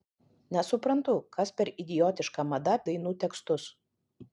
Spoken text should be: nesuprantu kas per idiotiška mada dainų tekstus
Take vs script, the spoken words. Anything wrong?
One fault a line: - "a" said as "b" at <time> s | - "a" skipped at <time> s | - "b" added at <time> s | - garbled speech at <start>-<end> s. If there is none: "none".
none